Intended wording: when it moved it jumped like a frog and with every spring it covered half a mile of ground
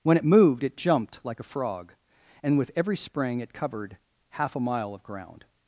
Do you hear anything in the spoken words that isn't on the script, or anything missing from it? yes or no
no